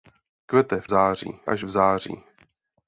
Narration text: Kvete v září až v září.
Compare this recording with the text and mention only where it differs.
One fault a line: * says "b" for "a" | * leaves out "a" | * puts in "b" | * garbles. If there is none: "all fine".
all fine